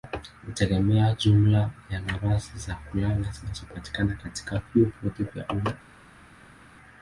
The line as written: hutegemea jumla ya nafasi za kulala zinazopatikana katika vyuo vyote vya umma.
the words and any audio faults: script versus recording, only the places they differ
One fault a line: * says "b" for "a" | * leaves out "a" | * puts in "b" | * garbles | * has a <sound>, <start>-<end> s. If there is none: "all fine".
all fine